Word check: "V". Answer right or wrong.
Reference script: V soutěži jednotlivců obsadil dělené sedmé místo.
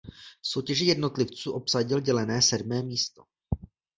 right